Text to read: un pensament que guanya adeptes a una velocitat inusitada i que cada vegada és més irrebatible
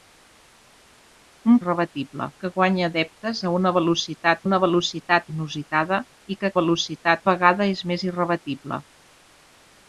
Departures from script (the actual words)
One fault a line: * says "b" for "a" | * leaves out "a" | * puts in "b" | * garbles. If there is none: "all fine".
* says "irrebatible" for "pensament"
* puts in "una velocitat"
* says "velocitat" for "cada"